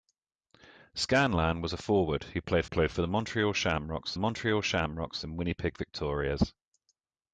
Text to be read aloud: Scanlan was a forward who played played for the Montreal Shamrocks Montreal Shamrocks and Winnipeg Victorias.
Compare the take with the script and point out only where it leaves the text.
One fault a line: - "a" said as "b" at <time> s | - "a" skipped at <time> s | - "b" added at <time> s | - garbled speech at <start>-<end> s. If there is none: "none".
none